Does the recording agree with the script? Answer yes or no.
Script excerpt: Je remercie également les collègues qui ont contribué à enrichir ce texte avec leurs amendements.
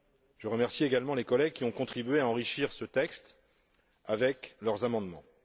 yes